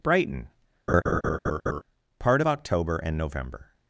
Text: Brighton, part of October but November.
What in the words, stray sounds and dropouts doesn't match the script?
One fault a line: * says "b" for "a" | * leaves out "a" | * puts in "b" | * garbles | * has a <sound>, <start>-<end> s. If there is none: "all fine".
* has a laugh, 0.9-1.8 s
* says "and" for "but"